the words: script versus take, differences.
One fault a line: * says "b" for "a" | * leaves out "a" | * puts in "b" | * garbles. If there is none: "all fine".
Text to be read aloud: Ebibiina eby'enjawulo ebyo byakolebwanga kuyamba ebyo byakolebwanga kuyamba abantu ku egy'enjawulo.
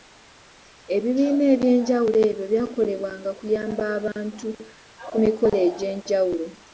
* leaves out "ebyo byakolebwanga kuyamba"
* puts in "mikolo"